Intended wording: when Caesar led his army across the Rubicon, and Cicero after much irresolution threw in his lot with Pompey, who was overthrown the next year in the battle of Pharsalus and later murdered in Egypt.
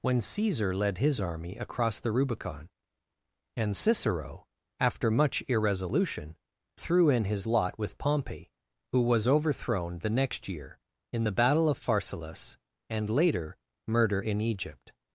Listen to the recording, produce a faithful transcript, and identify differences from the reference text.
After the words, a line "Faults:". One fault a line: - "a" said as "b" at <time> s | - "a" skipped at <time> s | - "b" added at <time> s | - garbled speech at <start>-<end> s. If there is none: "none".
when Caesar led his army across the Rubicon, and Cicero after much irresolution threw in his lot with Pompey, who was overthrown the next year in the battle of Pharsalus and later murder in Egypt.
Faults:
- "murdered" said as "murder" at 13.9 s